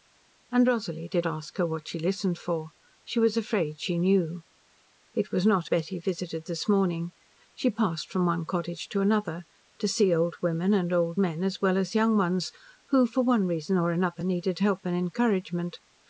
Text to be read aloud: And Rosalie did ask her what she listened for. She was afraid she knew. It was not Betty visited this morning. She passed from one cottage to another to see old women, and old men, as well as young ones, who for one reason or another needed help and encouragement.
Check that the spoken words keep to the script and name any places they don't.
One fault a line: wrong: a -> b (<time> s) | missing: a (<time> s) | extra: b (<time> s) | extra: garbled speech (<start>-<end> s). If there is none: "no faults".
no faults